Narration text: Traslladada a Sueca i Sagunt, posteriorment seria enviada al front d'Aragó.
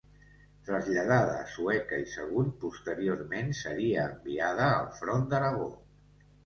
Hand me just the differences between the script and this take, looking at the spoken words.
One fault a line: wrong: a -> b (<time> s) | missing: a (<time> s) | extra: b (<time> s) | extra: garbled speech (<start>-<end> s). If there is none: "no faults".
no faults